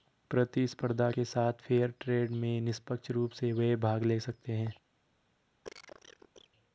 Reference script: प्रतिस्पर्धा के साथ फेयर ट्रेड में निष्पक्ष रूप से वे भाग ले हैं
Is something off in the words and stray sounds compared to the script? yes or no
yes